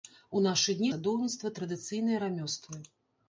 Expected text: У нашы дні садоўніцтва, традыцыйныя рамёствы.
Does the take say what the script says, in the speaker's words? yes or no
yes